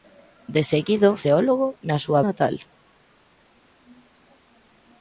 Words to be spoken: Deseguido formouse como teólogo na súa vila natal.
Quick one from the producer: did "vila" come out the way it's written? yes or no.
no